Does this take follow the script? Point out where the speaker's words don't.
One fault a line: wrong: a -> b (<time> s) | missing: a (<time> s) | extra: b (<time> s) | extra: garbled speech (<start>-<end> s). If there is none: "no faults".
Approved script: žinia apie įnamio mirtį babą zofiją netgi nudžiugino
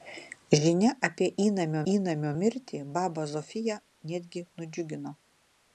extra: įnamio (1.9 s)